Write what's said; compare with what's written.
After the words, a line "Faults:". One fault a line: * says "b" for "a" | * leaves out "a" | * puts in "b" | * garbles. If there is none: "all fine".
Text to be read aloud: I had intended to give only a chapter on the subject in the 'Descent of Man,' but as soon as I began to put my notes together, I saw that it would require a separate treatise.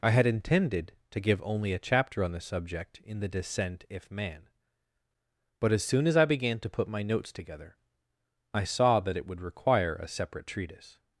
I had intended to give only a chapter on the subject in the 'Descent if Man,' but as soon as I began to put my notes together, I saw that it would require a separate treatise.
Faults:
* says "if" for "of"